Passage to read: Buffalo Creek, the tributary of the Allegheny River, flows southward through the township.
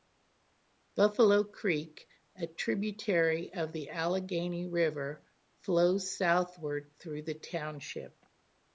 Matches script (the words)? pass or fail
fail